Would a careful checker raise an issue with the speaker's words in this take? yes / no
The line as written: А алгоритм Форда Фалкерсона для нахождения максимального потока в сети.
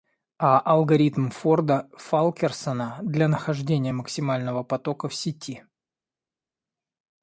no